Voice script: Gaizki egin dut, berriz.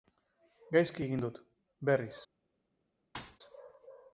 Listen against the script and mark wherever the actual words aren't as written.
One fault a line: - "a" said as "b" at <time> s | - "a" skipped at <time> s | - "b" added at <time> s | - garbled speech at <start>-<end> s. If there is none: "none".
none